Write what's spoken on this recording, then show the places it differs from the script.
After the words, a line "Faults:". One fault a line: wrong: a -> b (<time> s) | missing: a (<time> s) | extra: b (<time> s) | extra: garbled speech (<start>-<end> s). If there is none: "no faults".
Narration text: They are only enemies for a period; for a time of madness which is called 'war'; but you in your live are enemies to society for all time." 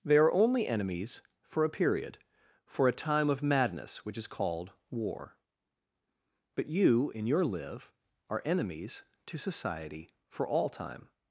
They are only enemies for a period; for a time of madness which is called 'war'; but you in your live are enemies to society for all time."
Faults:
no faults